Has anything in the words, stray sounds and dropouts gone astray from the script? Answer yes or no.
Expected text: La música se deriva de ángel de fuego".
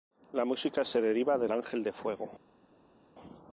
no